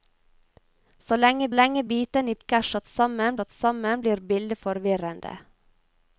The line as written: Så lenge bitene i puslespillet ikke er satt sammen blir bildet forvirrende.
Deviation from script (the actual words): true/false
true